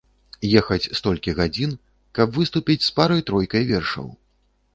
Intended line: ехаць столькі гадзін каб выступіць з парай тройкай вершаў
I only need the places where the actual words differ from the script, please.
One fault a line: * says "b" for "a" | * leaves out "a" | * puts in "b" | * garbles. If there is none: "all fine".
all fine